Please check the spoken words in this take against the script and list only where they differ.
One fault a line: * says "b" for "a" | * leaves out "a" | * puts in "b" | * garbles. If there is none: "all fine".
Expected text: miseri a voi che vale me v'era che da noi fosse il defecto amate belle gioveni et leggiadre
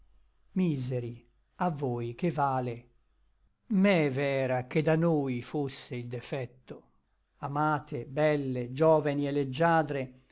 all fine